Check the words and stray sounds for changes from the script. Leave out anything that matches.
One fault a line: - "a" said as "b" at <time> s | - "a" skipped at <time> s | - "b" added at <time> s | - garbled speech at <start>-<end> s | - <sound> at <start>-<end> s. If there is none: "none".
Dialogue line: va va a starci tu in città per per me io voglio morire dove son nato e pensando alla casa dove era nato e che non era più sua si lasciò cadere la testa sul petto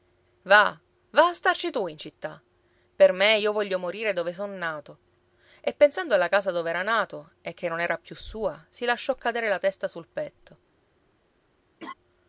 - "per" skipped at 3.1 s
- laugh at 11.8-11.9 s